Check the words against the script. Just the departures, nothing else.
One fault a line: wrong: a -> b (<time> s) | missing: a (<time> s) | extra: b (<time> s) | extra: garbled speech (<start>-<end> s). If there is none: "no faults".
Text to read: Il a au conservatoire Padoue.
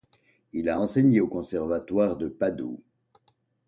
extra: enseigné (0.8 s)
extra: de (2.2 s)